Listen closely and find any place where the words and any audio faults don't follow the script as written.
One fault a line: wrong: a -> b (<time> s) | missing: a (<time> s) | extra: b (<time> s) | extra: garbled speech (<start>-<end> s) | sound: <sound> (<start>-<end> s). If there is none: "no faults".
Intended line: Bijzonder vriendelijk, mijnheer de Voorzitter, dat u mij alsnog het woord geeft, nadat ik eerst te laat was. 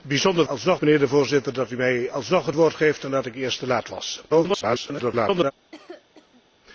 wrong: vriendelijk -> alsnog (0.5 s)
extra: garbled speech (4.3-5.5 s)
sound: cough (5.7-6.4 s)